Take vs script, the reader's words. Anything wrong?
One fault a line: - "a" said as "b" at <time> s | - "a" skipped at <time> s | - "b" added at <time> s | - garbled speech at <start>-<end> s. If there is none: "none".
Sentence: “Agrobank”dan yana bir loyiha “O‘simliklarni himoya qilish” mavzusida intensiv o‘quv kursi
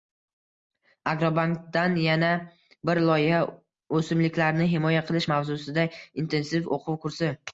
none